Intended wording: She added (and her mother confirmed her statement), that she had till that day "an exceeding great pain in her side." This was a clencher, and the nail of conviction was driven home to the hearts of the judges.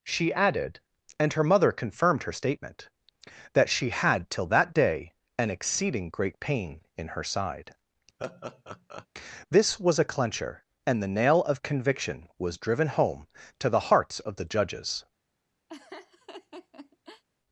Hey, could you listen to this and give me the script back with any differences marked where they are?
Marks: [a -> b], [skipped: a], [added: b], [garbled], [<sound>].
She added (and her mother confirmed her statement), that she had till that day "an exceeding great pain in her side." [laugh] This was a clencher, and the nail of conviction was driven home to the hearts of the judges. [laugh]